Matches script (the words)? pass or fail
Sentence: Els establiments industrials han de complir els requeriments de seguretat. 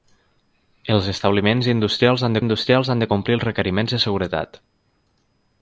fail